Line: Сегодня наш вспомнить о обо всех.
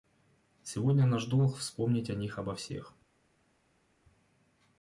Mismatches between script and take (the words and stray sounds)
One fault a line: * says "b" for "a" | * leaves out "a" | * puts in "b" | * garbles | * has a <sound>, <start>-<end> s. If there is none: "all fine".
* puts in "долг"
* puts in "них"